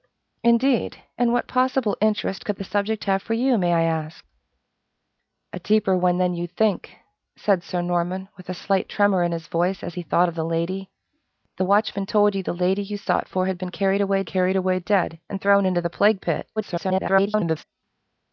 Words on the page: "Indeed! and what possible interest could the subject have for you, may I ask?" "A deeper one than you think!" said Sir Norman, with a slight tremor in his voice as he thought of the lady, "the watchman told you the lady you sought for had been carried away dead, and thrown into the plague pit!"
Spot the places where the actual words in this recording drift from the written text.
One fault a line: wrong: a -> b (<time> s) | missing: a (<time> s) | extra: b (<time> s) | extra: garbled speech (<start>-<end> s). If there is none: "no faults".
extra: carried away (14.2 s)
extra: garbled speech (16.6-17.6 s)